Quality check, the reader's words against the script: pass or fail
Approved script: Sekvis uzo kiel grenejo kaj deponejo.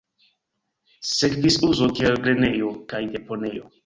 pass